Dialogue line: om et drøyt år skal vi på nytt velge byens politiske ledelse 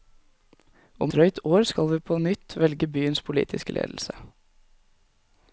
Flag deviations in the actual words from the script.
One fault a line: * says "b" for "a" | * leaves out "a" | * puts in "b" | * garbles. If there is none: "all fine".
* leaves out "et"